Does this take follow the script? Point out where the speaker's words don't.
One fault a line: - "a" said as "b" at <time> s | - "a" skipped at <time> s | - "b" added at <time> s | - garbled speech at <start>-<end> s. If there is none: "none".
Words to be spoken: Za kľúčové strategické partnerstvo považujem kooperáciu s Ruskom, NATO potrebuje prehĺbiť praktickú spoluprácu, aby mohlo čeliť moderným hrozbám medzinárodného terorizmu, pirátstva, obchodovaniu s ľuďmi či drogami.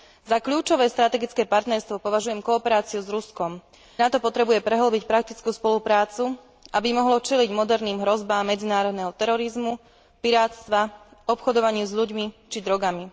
none